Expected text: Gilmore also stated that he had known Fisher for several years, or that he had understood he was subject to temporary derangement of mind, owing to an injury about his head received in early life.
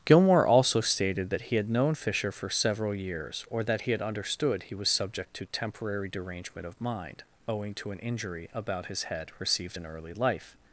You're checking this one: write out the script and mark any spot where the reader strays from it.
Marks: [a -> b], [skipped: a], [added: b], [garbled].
Gilmore also stated that he had known Fisher for several years, or that he had understood he was subject to temporary derangement of mind, owing to an injury about his head received in early life.